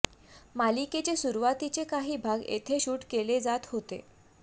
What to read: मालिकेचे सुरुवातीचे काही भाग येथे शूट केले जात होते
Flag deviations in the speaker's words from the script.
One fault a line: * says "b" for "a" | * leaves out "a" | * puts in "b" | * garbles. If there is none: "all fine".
all fine